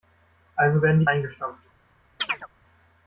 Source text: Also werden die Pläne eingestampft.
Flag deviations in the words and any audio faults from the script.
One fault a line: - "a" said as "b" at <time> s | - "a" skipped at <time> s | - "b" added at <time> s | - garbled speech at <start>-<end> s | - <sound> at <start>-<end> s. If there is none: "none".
- "Pläne" skipped at 1.1 s
- chirp at 2.2-2.5 s